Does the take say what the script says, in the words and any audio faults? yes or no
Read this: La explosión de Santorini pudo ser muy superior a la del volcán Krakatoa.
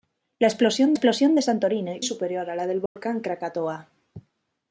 no